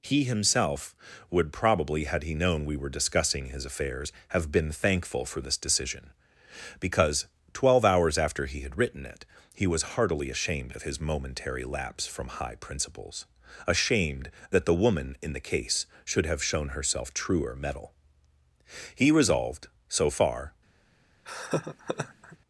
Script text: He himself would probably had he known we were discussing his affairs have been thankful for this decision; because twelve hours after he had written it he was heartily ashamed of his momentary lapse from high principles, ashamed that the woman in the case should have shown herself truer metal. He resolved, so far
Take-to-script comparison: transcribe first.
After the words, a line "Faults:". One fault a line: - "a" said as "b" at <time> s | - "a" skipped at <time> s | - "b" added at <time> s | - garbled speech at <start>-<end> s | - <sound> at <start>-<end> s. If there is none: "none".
He himself would probably had he known we were discussing his affairs have been thankful for this decision; because twelve hours after he had written it he was heartily ashamed of his momentary lapse from high principles, ashamed that the woman in the case should have shown herself truer metal. He resolved, so far
Faults:
- laugh at 21.2-22.4 s